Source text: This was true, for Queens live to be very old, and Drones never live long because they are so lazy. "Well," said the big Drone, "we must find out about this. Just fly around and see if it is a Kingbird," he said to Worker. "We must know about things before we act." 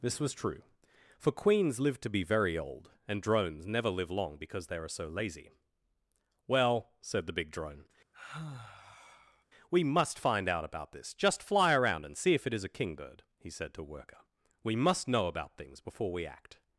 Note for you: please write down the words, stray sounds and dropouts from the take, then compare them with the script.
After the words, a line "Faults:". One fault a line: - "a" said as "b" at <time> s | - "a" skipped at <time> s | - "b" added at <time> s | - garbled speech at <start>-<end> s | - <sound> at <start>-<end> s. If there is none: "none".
This was true, for Queens live to be very old, and Drones never live long because they are so lazy. "Well," said the big Drone, "we must find out about this. Just fly around and see if it is a Kingbird," he said to Worker. "We must know about things before we act."
Faults:
- sigh at 8.1-9.4 s